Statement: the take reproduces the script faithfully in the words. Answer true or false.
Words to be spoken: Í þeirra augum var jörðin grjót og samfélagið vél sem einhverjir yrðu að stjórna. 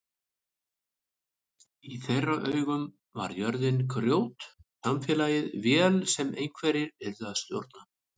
false